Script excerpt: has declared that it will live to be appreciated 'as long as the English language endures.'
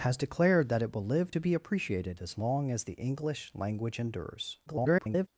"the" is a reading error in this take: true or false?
false